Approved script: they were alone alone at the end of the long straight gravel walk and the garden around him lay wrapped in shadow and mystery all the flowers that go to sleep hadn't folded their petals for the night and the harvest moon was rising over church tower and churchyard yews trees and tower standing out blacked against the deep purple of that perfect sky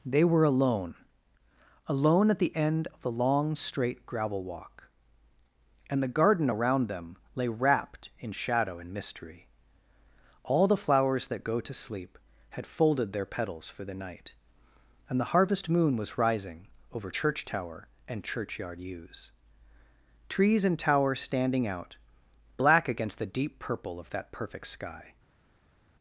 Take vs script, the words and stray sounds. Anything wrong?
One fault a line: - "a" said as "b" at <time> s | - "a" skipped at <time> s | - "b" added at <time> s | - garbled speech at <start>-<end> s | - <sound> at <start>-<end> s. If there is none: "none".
- "him" said as "them" at 6.9 s
- "hadn't" said as "had" at 12.5 s
- "blacked" said as "black" at 22.6 s